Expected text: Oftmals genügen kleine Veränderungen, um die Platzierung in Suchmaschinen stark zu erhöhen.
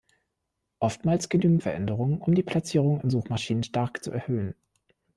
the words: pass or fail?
fail